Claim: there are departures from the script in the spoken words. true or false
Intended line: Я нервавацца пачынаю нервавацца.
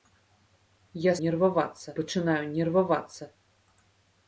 false